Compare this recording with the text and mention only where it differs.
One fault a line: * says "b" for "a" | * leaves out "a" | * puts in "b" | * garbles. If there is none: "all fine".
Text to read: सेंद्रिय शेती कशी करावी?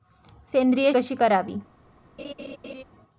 * leaves out "शेती"